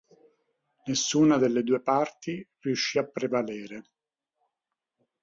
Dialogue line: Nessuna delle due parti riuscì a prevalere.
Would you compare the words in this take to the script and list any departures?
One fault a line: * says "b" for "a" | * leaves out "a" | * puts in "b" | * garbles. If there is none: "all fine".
all fine